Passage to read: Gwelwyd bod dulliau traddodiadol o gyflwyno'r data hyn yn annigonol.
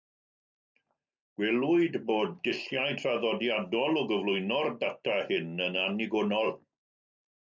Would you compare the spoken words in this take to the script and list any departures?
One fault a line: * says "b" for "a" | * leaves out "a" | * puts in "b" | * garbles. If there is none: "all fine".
all fine